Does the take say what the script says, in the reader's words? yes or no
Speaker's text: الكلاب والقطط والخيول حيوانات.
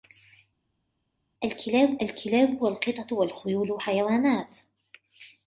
no